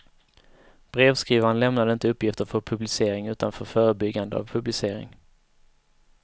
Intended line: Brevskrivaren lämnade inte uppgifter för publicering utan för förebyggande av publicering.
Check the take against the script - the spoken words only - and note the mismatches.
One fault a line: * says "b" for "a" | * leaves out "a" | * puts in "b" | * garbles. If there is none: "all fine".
all fine